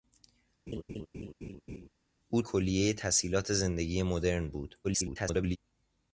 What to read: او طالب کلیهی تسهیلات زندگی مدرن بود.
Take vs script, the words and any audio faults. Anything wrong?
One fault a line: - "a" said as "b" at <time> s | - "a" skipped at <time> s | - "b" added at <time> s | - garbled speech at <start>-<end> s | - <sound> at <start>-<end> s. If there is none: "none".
- laugh at 0.7-1.9 s
- "طالب" skipped at 2.4 s
- garbled speech at 4.8-5.6 s